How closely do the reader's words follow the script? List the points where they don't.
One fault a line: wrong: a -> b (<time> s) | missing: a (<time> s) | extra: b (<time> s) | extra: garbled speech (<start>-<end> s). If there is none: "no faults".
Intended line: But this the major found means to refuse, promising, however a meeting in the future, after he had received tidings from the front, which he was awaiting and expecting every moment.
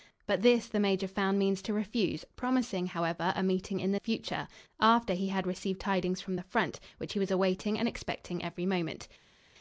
no faults